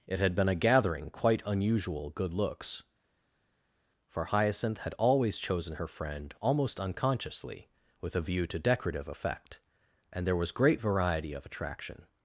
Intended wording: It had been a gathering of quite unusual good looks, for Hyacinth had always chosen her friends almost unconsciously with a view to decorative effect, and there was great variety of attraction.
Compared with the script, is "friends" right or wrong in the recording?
wrong